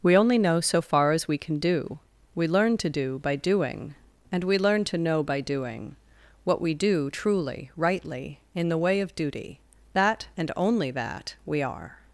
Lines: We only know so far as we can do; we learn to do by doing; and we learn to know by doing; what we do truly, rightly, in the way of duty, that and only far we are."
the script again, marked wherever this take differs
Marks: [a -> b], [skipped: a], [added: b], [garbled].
We only know so far as we can do; we learn to do by doing; and we learn to know by doing; what we do truly, rightly, in the way of duty, that and only [far -> that] we are."